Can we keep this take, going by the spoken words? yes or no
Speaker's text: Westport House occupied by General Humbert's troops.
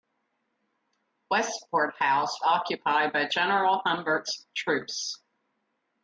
yes